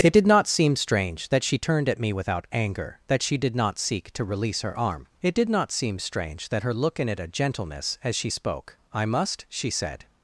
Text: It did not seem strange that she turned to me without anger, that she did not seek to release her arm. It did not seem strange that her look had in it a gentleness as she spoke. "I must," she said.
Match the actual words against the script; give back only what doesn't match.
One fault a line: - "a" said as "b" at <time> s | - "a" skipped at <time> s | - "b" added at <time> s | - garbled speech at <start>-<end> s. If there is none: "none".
- "to" said as "at" at 1.9 s
- "had" skipped at 7.0 s